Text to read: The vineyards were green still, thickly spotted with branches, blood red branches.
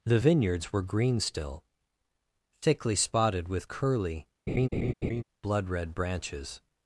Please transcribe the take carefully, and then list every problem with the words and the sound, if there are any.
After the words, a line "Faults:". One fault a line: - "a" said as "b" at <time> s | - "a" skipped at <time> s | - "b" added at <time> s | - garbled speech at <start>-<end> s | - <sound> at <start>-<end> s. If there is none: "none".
The vineyards were green still, thickly spotted with curly, blood red branches.
Faults:
- "branches" said as "curly" at 3.7 s
- laugh at 4.5-5.2 s